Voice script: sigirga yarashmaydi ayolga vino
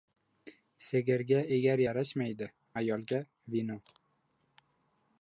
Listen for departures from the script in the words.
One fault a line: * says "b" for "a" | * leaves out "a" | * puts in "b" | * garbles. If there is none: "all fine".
* puts in "egar"